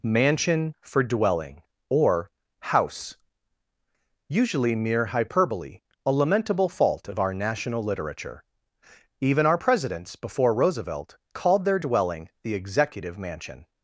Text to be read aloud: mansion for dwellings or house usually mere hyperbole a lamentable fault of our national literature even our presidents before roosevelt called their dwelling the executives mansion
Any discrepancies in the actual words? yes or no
yes